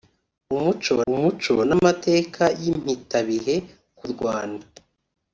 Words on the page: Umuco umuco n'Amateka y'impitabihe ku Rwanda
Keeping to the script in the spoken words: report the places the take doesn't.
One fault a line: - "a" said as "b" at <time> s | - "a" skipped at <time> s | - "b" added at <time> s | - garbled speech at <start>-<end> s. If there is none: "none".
none